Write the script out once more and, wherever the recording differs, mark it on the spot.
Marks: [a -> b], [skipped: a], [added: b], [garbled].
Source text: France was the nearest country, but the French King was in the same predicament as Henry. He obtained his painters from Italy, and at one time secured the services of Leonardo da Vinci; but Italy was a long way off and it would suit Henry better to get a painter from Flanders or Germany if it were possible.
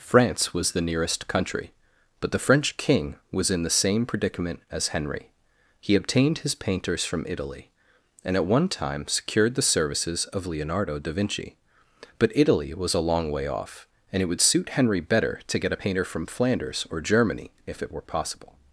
France was the nearest country, but the French King was in the same predicament as Henry. He obtained his painters from Italy, and at one time secured the services of Leonardo da Vinci; but Italy was a long way off and it would suit Henry better to get a painter from Flanders or Germany if it were possible.